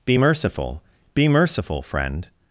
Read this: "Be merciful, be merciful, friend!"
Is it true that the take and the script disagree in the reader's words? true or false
false